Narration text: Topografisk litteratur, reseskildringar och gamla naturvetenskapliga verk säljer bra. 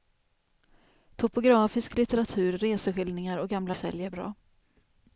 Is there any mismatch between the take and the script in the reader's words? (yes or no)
yes